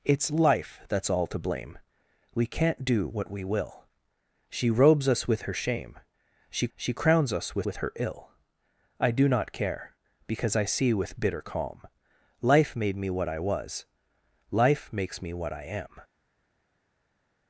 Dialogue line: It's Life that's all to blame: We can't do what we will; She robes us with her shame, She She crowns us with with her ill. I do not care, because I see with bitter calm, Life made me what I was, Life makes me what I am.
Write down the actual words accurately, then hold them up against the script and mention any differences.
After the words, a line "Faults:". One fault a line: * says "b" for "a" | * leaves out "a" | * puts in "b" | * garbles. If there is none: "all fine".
It's Life that's all to blame: We can't do what we will; She robes us with her shame, She She crowns us with with her ill. I do not care, because I see with bitter calm, Life made me what I was, Life makes me what I am.
Faults:
all fine